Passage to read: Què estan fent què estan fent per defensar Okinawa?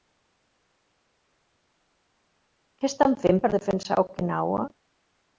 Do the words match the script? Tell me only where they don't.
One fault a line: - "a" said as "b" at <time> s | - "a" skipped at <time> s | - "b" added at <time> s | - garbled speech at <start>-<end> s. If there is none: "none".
- "què estan fent" skipped at 3.4 s